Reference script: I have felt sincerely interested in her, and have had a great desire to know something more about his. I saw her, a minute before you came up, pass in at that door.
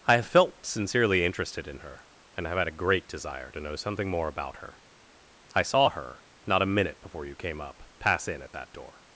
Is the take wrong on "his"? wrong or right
wrong